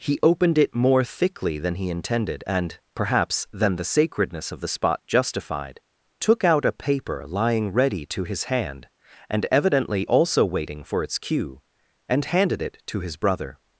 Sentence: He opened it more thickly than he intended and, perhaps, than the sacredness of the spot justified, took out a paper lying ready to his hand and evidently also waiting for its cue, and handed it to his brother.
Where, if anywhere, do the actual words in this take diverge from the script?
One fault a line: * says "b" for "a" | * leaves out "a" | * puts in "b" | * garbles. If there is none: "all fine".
all fine